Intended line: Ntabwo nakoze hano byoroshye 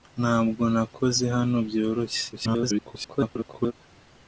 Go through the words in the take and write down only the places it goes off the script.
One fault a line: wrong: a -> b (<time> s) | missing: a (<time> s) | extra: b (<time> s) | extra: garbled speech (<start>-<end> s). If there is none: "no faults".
extra: garbled speech (2.3-3.7 s)